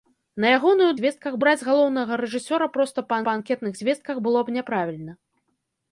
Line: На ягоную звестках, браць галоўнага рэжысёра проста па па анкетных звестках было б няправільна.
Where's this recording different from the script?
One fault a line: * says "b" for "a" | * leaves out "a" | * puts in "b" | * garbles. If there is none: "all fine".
all fine